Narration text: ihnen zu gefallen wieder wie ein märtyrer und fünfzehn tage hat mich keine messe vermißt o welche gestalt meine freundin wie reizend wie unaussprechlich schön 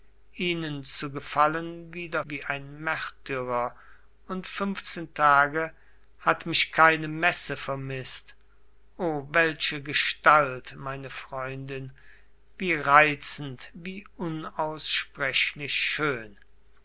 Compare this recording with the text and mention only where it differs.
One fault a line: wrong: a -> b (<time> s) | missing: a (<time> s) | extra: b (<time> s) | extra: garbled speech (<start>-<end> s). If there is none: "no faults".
no faults